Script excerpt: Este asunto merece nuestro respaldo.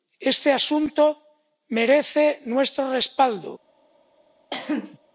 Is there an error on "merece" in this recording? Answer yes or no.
no